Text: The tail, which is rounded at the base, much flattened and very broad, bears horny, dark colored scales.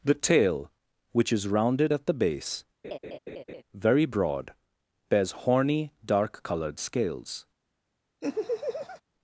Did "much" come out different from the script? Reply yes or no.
yes